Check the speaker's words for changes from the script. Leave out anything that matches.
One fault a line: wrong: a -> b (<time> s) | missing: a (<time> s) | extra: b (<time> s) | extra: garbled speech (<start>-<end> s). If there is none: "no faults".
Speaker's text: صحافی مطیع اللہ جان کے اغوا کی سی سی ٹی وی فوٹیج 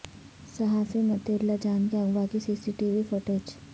no faults